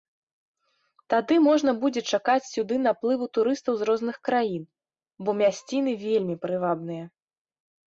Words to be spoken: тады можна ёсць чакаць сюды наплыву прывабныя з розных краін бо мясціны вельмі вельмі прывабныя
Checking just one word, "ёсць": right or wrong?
wrong